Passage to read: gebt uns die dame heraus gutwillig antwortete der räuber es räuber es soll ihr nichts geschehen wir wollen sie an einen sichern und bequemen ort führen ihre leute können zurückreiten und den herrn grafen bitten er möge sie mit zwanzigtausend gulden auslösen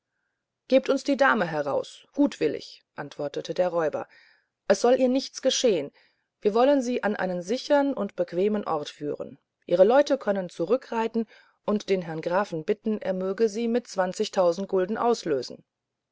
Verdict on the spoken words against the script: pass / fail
fail